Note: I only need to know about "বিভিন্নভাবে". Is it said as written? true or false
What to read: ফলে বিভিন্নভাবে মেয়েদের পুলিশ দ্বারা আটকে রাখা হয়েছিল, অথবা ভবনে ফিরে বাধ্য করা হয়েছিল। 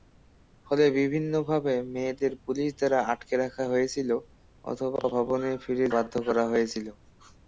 true